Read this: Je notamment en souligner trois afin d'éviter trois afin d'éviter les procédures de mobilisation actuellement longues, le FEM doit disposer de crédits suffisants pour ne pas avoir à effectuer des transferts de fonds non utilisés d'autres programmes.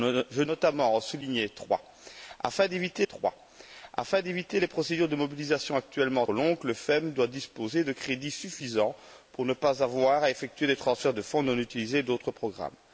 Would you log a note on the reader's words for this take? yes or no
no